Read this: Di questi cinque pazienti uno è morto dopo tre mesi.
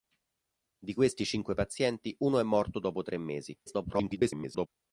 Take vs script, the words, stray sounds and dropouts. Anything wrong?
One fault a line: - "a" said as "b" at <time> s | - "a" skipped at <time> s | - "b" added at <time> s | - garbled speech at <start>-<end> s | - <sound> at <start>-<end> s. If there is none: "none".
- garbled speech at 3.7-4.7 s